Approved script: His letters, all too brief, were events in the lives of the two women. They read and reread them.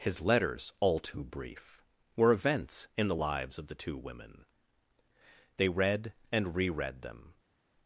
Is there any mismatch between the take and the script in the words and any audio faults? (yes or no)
no